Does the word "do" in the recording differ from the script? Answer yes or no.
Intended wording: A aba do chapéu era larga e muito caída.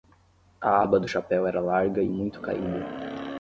no